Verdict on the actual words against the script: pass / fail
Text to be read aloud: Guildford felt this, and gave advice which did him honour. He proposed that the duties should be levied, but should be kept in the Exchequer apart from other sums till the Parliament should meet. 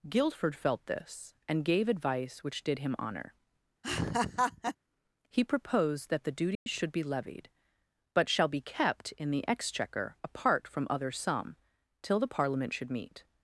fail